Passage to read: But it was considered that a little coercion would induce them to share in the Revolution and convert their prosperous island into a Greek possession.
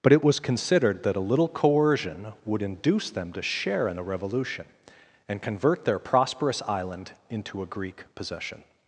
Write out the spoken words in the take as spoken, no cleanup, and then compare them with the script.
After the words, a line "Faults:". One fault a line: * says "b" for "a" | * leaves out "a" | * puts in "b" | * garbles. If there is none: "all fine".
But it was considered that a little coercion would induce them to share in the Revolution and convert their prosperous island into a Greek possession.
Faults:
all fine